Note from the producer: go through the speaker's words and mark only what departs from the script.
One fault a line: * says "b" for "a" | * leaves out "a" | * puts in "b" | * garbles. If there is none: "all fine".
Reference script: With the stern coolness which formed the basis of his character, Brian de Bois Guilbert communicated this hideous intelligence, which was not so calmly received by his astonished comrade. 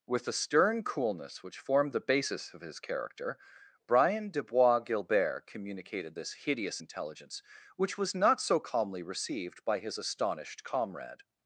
all fine